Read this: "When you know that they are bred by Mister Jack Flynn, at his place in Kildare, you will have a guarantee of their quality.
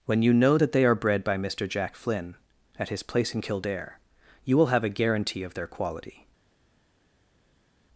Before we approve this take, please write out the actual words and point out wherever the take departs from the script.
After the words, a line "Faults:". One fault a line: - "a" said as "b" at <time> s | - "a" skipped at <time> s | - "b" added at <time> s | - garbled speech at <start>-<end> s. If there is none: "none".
"When you know that they are bred by Mister Jack Flynn, at his place in Kildare, you will have a guarantee of their quality.
Faults:
none